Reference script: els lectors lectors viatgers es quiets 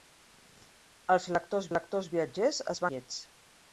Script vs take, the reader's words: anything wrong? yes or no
no